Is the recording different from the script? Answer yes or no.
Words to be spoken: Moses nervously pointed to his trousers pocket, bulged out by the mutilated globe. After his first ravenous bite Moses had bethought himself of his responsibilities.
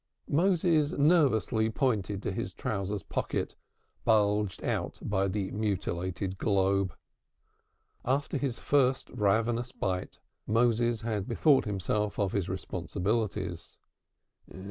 no